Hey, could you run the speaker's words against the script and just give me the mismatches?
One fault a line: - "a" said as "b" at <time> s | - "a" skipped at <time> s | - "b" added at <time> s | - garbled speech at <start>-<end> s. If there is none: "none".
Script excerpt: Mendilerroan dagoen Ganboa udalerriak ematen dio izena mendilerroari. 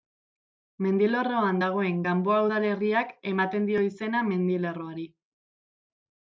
none